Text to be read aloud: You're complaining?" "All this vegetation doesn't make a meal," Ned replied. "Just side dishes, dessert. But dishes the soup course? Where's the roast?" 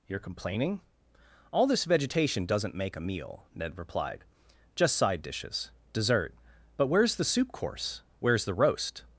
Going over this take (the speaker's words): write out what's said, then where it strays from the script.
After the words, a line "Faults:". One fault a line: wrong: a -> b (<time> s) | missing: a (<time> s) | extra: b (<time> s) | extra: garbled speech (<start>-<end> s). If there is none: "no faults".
You're complaining?" "All this vegetation doesn't make a meal," Ned replied. "Just side dishes, dessert. But where's the soup course? Where's the roast?"
Faults:
wrong: dishes -> where's (6.9 s)